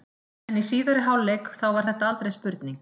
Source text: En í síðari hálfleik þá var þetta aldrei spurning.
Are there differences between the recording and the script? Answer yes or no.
no